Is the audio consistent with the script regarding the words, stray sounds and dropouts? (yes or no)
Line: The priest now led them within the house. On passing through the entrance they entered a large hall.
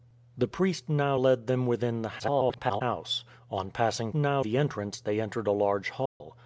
no